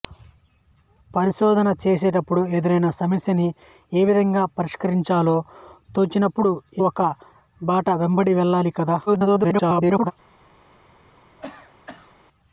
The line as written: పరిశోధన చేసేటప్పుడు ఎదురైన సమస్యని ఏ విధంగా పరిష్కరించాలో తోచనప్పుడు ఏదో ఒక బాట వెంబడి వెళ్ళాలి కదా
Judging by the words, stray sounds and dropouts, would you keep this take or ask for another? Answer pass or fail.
fail